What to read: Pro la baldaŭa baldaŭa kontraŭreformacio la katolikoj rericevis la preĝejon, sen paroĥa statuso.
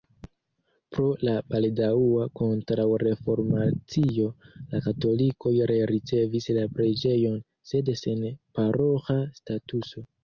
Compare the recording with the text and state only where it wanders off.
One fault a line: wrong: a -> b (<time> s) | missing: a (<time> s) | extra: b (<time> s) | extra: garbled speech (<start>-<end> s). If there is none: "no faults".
missing: baldaŭa (2.2 s)
extra: sed (7.7 s)